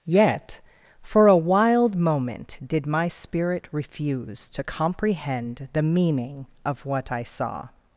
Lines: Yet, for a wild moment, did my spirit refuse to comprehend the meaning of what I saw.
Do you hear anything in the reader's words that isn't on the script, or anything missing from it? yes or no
no